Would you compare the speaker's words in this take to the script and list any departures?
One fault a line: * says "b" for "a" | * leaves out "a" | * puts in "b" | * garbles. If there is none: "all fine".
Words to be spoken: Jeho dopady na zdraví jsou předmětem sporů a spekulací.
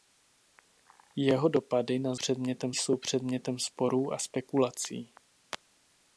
* says "předmětem" for "zdraví"